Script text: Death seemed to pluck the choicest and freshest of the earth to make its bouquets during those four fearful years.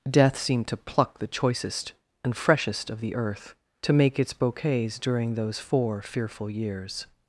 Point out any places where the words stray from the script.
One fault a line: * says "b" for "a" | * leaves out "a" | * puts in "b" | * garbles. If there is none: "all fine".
all fine